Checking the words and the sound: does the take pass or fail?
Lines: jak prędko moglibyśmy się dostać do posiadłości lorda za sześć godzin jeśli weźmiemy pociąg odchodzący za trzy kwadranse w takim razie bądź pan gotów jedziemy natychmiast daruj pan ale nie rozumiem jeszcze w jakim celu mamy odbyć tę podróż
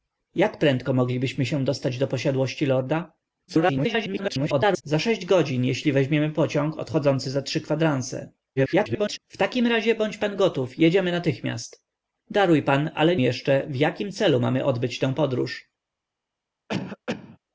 fail